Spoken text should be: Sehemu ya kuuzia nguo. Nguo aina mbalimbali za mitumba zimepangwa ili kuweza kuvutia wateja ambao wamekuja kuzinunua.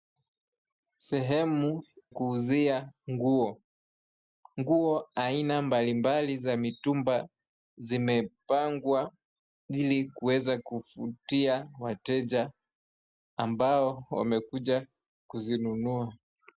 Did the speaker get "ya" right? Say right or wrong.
wrong